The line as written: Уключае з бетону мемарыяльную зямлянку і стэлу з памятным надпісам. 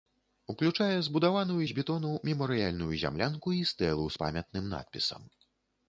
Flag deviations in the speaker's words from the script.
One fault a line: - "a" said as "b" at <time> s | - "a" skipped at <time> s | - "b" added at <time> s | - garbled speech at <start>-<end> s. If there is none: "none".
- "збудаваную" added at 1.1 s